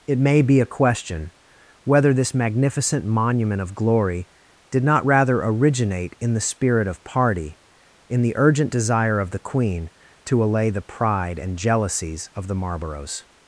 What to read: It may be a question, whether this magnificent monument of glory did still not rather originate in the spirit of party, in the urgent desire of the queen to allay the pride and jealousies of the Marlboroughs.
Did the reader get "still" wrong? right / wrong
wrong